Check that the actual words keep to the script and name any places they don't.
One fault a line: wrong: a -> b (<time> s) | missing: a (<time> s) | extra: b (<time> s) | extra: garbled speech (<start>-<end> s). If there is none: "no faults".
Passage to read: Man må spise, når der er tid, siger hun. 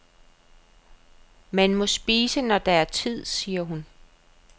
no faults